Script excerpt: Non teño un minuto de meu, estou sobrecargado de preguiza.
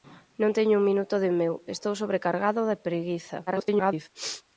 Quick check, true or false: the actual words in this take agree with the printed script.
false